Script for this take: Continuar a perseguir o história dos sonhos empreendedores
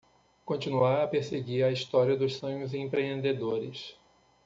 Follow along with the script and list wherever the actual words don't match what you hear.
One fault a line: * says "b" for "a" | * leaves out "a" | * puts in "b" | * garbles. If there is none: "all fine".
* says "a" for "o"